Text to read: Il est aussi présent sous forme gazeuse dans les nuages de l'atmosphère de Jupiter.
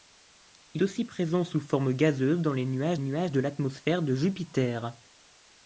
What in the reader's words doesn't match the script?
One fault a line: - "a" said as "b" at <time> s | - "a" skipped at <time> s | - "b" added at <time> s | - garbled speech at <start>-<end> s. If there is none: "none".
- "est" skipped at 0.8 s
- "nuages" added at 3.0 s